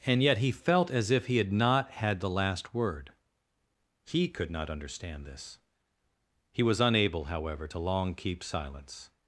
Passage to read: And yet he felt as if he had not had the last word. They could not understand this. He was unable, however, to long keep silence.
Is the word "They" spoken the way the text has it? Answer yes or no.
no